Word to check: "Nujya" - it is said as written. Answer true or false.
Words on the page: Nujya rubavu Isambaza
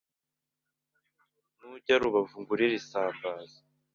true